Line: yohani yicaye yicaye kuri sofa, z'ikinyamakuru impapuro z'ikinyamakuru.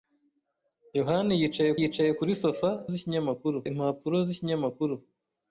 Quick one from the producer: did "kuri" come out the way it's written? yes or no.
yes